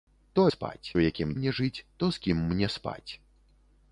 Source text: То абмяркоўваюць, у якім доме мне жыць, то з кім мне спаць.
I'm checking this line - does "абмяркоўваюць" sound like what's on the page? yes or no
no